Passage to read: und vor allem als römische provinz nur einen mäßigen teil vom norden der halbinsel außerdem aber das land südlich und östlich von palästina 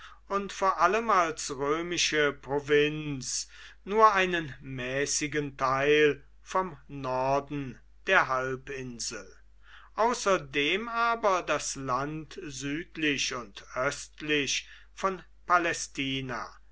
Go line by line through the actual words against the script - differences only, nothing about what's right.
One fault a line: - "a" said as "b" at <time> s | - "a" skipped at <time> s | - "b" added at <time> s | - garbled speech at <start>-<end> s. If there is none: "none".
none